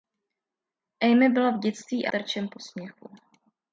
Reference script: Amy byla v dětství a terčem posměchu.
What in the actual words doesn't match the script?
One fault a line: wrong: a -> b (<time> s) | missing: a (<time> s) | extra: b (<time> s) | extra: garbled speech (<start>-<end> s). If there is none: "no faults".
no faults